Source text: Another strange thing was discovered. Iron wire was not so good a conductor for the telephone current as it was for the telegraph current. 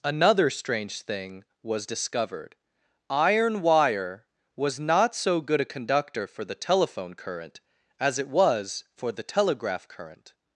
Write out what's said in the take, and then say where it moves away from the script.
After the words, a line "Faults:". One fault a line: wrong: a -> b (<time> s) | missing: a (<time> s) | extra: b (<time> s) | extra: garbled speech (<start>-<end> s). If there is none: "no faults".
Another strange thing was discovered. Iron wire was not so good a conductor for the telephone current as it was for the telegraph current.
Faults:
no faults